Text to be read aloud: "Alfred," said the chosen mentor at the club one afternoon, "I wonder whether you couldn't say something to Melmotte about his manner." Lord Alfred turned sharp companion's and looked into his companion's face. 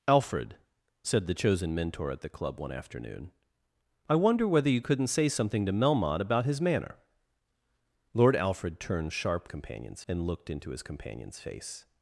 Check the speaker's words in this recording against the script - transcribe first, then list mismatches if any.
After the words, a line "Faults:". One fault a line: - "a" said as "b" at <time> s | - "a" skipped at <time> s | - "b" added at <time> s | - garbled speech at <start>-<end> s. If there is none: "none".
"Alfred," said the chosen mentor at the club one afternoon, "I wonder whether you couldn't say something to Melmotte about his manner." Lord Alfred turned sharp companion's and looked into his companion's face.
Faults:
none